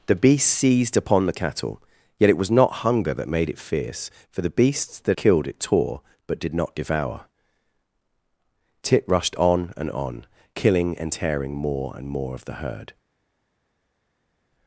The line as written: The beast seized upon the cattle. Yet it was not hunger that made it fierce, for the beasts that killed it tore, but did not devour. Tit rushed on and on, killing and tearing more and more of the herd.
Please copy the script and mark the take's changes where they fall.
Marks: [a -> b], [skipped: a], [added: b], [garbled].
The beast seized upon the cattle. Yet it was not hunger that made it fierce, for the beasts that killed it tore, but did not devour. Tit rushed on and on, killing and tearing more and more of the herd.